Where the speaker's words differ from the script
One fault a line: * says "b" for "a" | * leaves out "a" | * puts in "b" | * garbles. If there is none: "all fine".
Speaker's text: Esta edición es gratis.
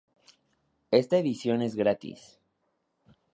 all fine